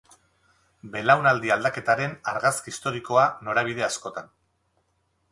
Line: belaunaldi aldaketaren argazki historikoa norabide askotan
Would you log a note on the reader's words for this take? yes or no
no